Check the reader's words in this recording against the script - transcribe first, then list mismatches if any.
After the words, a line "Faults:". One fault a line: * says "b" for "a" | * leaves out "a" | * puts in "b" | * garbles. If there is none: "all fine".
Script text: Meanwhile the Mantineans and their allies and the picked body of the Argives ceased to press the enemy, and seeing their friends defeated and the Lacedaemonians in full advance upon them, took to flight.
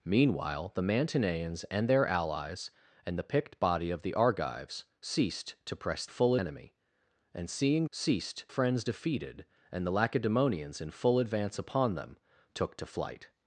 Meanwhile the Mantineans and their allies and the picked body of the Argives ceased to press full enemy, and seeing ceased friends defeated and the Lacedaemonians in full advance upon them, took to flight.
Faults:
* says "full" for "the"
* says "ceased" for "their"